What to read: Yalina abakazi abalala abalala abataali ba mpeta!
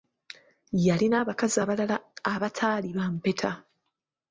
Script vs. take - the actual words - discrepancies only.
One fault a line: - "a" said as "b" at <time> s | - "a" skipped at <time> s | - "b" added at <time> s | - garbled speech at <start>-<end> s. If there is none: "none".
- "abalala" skipped at 2.0 s